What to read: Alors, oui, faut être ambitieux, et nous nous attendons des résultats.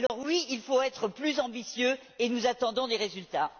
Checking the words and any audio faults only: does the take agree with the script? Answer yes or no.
no